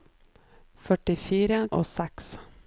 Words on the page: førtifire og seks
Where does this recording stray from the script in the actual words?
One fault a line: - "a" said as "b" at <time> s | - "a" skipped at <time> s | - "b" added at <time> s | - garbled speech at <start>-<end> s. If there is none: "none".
none